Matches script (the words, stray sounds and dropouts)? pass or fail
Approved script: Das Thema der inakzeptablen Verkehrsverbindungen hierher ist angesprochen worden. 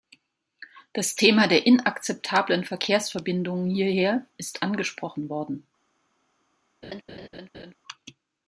fail